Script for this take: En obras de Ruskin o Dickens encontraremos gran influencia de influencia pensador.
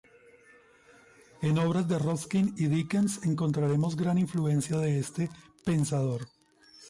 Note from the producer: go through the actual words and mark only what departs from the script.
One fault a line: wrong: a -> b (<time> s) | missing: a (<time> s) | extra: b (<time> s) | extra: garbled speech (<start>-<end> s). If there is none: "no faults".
wrong: o -> y (2.6 s)
wrong: influencia -> este (5.0 s)